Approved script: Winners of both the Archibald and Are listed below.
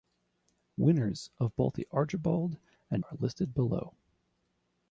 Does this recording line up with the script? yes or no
yes